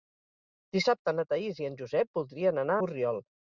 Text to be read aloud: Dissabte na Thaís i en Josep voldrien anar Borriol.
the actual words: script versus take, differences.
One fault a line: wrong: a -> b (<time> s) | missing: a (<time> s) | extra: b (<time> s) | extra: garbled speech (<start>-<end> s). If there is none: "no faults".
no faults